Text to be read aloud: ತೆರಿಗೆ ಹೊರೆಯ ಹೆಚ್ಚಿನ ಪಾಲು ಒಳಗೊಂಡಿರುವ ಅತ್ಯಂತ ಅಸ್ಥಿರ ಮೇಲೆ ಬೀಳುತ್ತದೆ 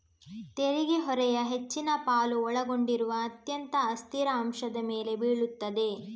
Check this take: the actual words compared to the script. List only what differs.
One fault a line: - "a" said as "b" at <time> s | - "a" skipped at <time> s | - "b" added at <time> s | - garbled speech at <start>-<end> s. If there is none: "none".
- "ಅಂಶದ" added at 4.4 s